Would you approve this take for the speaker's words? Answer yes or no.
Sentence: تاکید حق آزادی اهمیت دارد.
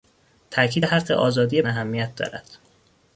yes